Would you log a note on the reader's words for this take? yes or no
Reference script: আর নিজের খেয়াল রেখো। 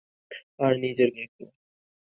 yes